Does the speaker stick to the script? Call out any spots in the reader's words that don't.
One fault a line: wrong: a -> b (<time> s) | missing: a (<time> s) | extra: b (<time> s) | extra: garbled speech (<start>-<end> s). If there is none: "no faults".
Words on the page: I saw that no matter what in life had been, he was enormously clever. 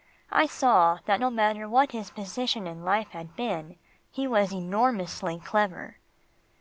extra: his position (1.9 s)